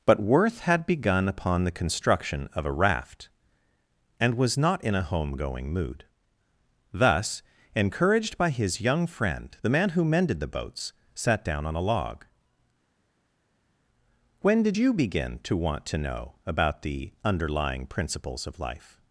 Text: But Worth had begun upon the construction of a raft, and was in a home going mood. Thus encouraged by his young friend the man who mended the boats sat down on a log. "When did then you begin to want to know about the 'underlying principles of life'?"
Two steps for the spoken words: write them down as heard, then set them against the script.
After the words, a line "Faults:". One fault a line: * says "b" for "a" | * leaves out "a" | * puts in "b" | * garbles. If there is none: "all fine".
But Worth had begun upon the construction of a raft, and was not in a home going mood. Thus encouraged by his young friend the man who mended the boats sat down on a log. "When did you begin to want to know about the 'underlying principles of life'?"
Faults:
* puts in "not"
* leaves out "then"